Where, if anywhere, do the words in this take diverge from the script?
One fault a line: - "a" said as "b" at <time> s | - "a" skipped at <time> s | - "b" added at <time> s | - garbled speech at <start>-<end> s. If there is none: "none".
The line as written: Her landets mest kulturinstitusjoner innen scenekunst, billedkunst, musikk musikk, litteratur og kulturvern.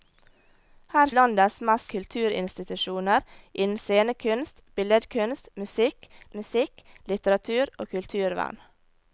none